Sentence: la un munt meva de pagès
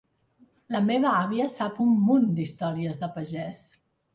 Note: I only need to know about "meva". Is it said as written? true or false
false